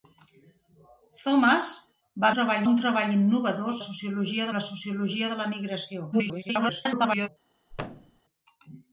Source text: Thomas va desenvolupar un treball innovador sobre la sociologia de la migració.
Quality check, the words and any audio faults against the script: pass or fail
fail